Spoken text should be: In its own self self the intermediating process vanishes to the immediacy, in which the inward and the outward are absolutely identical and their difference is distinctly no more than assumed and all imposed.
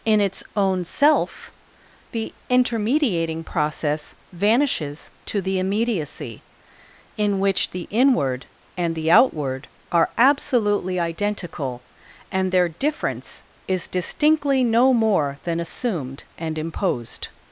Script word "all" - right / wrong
wrong